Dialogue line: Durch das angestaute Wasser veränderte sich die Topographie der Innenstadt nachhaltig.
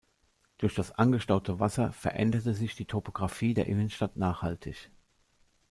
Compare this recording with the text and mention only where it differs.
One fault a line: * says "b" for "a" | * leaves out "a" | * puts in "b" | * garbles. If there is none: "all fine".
all fine